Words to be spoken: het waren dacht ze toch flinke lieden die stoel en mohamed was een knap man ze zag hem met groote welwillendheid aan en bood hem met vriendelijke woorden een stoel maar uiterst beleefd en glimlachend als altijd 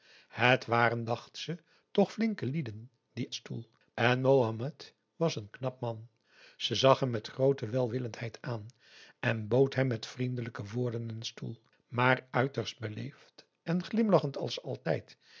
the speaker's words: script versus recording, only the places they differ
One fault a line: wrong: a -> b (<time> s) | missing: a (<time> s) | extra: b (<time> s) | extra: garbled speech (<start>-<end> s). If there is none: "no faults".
no faults